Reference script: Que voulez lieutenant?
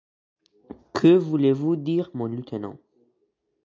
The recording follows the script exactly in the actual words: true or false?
false